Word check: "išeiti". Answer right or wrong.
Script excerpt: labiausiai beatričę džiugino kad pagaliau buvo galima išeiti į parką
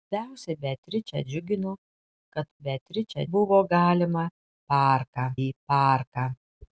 wrong